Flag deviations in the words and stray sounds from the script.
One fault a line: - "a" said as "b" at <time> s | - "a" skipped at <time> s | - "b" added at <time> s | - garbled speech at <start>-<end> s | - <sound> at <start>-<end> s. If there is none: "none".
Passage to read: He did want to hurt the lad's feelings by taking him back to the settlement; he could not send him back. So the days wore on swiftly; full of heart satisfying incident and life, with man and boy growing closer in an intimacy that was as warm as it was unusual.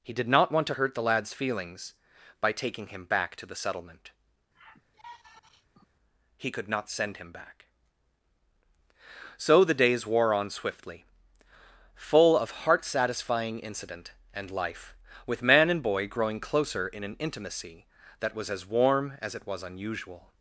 - "not" added at 0.3 s
- sigh at 4.5-5.9 s